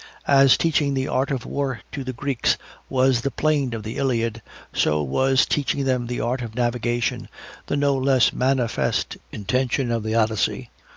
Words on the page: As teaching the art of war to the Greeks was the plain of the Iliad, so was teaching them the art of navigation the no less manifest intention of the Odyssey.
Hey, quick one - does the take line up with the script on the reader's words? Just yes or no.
yes